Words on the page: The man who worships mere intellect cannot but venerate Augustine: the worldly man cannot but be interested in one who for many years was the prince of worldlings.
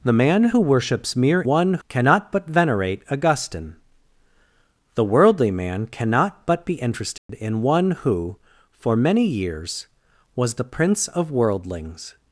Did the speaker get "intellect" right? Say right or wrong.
wrong